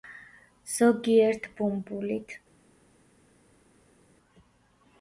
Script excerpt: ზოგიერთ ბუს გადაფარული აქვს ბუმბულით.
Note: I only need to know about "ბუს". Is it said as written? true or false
false